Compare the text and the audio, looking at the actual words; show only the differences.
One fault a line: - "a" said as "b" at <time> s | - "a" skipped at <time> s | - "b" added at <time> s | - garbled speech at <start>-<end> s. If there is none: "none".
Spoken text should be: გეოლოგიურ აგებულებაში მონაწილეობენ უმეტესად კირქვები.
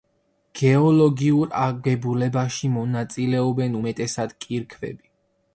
none